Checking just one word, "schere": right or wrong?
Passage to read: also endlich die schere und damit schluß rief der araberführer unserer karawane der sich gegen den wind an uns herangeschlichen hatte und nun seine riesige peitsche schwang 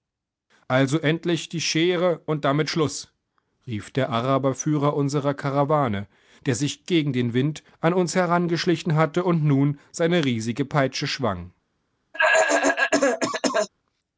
right